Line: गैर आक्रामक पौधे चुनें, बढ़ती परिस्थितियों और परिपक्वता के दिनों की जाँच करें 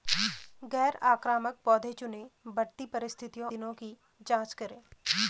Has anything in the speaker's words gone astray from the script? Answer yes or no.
yes